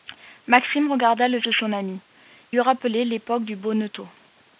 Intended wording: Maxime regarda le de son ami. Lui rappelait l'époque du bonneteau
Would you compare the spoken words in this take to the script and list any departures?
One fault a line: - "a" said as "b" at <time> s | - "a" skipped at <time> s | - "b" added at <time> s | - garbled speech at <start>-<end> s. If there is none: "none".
none